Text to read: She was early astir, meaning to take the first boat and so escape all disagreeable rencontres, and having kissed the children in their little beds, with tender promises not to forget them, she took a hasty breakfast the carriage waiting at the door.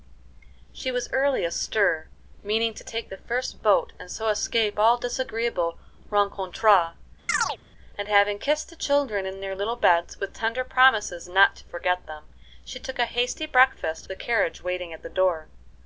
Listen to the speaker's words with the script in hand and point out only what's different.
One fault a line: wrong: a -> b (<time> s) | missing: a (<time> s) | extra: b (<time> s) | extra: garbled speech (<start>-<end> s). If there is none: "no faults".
no faults